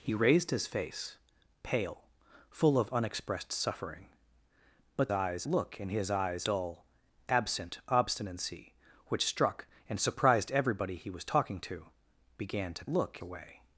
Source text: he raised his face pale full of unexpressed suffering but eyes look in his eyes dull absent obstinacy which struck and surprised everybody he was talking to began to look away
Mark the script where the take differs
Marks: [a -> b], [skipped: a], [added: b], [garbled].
he raised his face pale full of unexpressed suffering but eyes look in his eyes dull absent obstinacy which struck and surprised everybody he was talking to began to look away